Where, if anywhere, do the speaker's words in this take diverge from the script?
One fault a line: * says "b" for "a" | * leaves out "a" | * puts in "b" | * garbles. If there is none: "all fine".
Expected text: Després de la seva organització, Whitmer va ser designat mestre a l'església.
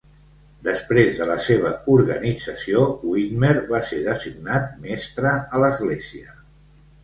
all fine